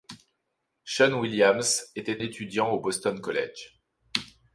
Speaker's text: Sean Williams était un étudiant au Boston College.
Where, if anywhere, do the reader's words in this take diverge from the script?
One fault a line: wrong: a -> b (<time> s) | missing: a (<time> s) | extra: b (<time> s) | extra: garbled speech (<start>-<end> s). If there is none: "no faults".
missing: un (2.2 s)